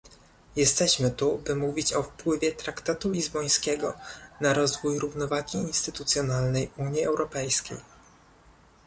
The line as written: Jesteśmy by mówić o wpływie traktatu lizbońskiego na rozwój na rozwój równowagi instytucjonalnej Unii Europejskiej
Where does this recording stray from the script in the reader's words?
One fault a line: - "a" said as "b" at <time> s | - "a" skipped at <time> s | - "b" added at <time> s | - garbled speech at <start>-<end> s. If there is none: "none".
- "tu" added at 1.1 s
- "na rozwój" skipped at 5.0 s